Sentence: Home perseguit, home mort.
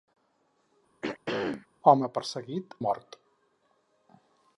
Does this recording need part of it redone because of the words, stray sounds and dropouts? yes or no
yes